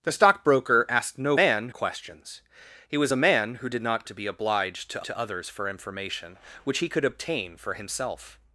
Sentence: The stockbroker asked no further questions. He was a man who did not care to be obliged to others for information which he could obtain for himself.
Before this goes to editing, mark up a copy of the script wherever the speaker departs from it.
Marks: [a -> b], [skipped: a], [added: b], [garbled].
The stockbroker asked no [further -> man] questions. He was a man who did not [skipped: care] to be obliged to [added: to] others for information which he could obtain for himself.